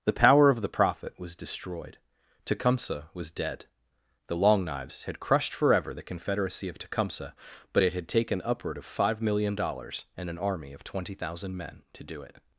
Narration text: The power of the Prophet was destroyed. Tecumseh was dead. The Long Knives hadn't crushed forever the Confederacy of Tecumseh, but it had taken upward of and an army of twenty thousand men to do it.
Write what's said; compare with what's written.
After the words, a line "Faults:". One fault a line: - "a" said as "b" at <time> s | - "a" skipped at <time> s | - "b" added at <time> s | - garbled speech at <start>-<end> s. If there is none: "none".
The power of the Prophet was destroyed. Tecumseh was dead. The Long Knives had crushed forever the Confederacy of Tecumseh, but it had taken upward of five million dollars and an army of twenty thousand men to do it.
Faults:
- "hadn't" said as "had" at 5.0 s
- "five million dollars" added at 8.9 s